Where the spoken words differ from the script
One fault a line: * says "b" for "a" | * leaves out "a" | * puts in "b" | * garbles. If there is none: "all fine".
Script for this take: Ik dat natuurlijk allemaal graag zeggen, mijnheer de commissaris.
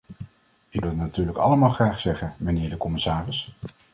all fine